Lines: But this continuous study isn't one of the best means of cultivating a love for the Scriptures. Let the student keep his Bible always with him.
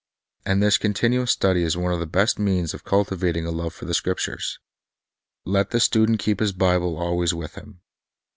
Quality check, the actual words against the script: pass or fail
fail